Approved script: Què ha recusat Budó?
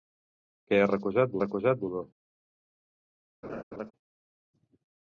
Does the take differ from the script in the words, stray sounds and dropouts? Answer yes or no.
yes